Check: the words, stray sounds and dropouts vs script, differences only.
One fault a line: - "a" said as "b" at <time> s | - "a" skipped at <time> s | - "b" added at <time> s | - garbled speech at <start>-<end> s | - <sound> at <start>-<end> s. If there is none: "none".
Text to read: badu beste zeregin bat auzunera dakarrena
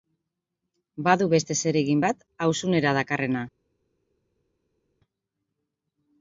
none